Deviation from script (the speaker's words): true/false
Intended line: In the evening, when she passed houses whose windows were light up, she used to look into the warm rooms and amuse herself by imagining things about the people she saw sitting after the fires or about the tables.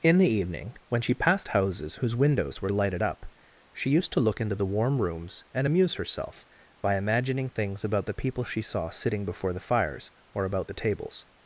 true